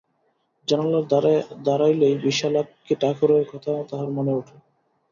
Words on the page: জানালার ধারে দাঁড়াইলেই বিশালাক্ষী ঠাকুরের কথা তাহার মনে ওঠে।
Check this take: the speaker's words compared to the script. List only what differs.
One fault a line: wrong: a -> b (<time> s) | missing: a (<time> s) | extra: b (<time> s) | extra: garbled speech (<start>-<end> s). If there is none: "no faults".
no faults